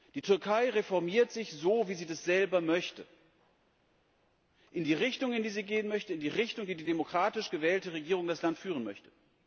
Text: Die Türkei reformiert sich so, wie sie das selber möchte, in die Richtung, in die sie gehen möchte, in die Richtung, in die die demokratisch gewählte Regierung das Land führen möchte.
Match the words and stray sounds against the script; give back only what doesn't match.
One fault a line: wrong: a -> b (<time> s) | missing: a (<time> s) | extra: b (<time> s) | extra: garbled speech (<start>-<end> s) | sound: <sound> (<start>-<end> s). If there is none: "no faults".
no faults